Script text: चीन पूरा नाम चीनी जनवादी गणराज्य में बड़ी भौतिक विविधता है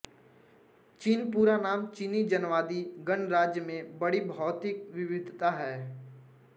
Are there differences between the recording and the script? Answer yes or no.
no